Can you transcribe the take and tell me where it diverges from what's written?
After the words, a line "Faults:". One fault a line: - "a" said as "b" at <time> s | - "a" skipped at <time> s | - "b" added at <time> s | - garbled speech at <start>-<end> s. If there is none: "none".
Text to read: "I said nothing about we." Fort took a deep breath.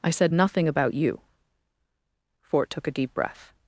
"I said nothing about you." Fort took a deep breath.
Faults:
- "we" said as "you" at 0.9 s